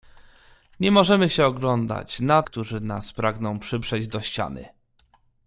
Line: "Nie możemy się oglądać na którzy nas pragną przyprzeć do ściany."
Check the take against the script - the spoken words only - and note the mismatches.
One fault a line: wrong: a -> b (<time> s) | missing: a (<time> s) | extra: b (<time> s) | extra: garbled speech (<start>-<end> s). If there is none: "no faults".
no faults